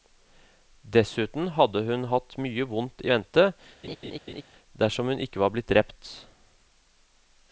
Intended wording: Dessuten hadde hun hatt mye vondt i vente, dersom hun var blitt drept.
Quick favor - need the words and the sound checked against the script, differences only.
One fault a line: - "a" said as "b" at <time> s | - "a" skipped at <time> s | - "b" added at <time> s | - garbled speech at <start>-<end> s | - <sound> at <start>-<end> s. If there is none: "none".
- laugh at 3.8-4.4 s
- "ikke" added at 5.3 s